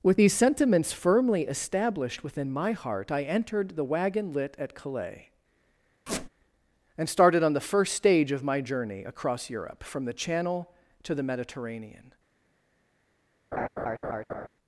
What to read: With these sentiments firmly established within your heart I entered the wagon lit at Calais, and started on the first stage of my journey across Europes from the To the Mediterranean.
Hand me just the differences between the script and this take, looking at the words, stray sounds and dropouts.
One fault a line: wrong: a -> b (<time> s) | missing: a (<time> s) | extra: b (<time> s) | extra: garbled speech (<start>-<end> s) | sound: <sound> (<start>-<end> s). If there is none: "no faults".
wrong: your -> my (2.5 s)
sound: squeak (6.1-6.3 s)
wrong: Europes -> Europe (9.5 s)
extra: Channel (10.1 s)
sound: laugh (13.5-14.5 s)